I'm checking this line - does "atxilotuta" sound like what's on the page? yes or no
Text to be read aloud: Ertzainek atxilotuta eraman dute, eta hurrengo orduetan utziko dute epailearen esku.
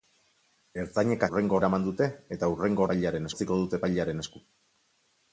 no